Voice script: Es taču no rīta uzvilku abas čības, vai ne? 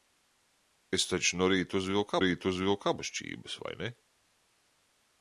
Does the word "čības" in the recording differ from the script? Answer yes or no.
no